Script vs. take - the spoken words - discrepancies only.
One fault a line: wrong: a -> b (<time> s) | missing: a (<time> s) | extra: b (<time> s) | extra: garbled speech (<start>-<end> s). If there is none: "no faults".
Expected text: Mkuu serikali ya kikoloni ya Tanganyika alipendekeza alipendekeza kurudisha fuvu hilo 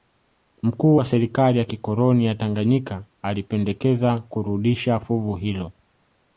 extra: wa (0.9 s)
missing: alipendekeza (4.2 s)